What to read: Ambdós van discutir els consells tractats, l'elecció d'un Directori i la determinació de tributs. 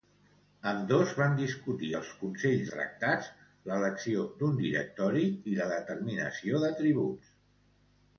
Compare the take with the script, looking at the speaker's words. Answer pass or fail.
pass